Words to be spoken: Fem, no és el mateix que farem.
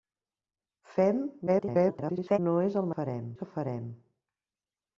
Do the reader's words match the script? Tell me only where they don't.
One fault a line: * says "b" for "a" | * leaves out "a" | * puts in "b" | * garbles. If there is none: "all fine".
* garbles
* says "farem" for "mateix"